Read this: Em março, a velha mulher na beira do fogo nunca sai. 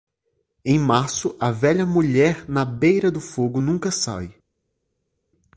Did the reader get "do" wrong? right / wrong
right